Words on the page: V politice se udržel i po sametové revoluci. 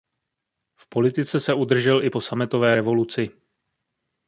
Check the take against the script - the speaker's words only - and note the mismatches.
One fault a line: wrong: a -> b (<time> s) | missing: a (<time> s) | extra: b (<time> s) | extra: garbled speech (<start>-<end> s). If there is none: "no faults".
no faults